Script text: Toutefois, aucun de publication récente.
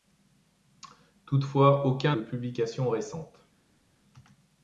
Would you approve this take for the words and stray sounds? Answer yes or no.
yes